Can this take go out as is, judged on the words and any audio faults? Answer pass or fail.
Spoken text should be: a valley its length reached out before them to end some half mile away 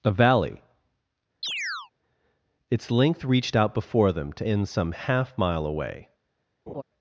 fail